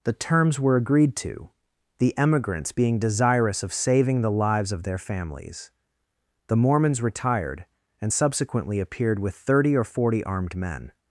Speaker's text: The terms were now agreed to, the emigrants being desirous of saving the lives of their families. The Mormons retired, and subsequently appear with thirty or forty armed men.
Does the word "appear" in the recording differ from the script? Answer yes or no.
yes